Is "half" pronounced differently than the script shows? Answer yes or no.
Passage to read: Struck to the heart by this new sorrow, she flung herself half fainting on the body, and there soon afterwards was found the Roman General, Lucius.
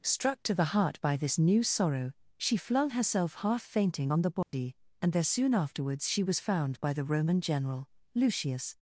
no